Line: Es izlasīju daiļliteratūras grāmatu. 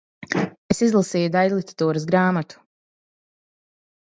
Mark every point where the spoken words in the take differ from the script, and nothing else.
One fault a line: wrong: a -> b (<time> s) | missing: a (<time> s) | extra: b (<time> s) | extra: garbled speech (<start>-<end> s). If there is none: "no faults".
no faults